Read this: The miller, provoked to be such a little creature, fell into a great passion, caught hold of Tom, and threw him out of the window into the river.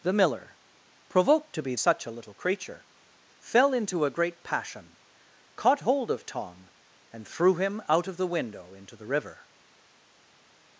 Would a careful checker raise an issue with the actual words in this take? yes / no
no